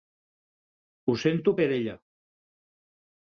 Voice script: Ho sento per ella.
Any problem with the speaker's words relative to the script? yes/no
no